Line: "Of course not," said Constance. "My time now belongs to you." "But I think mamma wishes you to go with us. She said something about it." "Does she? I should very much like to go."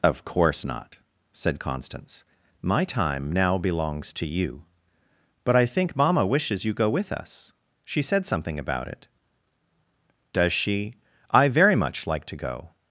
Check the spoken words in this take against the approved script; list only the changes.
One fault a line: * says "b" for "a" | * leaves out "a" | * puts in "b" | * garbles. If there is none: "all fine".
* leaves out "to"
* leaves out "should"